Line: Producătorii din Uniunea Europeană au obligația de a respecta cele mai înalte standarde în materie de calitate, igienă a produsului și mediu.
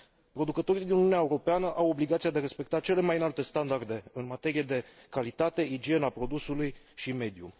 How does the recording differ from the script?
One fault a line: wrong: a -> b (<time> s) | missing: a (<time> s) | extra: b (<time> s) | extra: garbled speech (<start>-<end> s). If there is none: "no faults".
no faults